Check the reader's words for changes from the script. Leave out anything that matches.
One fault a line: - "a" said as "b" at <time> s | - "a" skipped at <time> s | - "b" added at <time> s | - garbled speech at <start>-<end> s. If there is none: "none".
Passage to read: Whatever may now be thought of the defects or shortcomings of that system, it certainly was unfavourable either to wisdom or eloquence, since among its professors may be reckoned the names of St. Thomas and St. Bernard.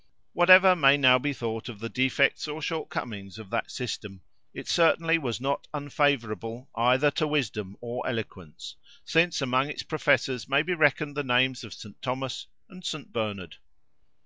- "not" added at 5.4 s